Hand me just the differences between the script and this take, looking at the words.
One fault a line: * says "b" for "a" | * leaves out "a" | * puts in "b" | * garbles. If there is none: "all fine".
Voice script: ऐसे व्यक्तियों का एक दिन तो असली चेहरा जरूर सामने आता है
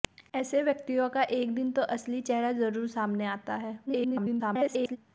* garbles